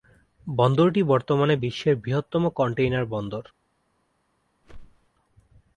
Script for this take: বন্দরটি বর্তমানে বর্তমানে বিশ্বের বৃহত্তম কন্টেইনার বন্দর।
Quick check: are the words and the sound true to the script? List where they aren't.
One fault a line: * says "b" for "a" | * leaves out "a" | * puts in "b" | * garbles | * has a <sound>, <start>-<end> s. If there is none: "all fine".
* leaves out "বর্তমানে"
* has a whoosh, 4.6-5.1 s